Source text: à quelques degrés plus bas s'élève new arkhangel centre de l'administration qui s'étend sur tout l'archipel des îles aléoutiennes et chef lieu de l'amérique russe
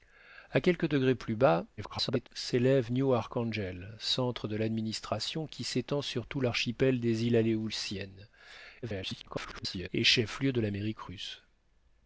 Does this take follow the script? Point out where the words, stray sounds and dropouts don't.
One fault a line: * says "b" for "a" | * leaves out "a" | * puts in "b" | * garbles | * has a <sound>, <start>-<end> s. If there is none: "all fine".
* garbles
* garbles